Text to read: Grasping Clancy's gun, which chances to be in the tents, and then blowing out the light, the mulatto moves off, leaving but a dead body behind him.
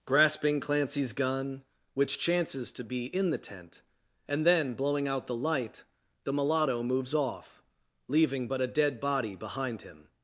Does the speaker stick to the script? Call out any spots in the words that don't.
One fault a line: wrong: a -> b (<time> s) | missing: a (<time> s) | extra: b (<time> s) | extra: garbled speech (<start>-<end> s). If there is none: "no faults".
wrong: tents -> tent (3.4 s)